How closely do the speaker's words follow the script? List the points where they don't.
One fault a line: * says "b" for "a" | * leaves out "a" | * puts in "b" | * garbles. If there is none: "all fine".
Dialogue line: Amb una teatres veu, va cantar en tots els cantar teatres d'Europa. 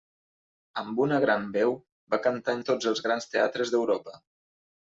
* says "gran" for "teatres"
* says "grans" for "cantar"